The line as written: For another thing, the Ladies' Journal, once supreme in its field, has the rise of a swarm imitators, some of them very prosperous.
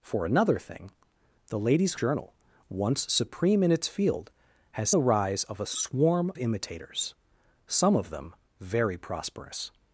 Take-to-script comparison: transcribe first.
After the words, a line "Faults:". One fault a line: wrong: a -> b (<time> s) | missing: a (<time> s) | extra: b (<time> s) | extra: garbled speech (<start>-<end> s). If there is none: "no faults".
For another thing, the Ladies' Journal, once supreme in its field, has the rise of a swarm imitators, some of them very prosperous.
Faults:
no faults